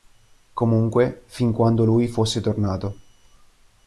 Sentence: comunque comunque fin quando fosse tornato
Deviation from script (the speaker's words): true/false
true